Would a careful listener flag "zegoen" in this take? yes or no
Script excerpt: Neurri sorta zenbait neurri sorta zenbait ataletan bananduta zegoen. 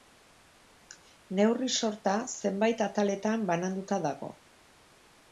yes